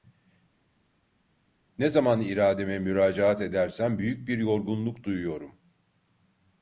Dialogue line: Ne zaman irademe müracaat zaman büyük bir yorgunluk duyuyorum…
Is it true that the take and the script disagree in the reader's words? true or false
true